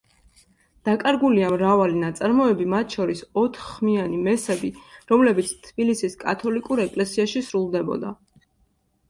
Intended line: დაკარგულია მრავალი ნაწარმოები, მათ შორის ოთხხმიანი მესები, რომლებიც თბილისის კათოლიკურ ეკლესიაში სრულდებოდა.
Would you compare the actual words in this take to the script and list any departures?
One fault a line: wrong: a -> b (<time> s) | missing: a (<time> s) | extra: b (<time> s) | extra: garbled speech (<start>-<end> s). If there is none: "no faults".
no faults